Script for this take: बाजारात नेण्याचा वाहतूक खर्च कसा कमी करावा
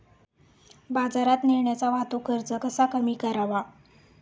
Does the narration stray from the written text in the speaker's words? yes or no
no